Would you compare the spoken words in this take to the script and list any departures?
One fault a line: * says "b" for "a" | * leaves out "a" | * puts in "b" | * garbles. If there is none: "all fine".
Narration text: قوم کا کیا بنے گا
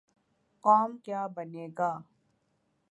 * leaves out "کا"